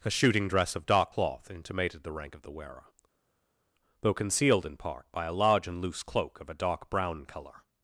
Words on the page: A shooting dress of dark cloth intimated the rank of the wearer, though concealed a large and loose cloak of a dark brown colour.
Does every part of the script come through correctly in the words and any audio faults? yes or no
no